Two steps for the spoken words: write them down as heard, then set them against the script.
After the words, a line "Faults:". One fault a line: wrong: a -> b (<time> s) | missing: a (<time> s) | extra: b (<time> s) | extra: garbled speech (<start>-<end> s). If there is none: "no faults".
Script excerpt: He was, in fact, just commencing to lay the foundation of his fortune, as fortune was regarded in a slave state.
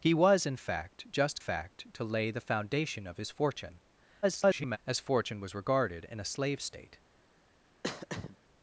He was, in fact, just fact to lay the foundation of his fortune, [garbled] as fortune was regarded in a slave state.
Faults:
wrong: commencing -> fact (1.4 s)
extra: garbled speech (4.2-4.8 s)